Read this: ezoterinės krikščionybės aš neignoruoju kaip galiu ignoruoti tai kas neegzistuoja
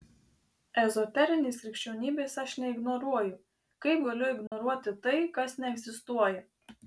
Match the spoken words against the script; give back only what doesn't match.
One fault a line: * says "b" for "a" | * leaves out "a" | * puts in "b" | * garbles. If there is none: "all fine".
all fine